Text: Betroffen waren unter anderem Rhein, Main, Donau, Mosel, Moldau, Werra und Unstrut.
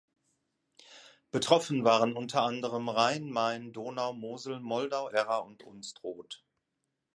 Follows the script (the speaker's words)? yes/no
yes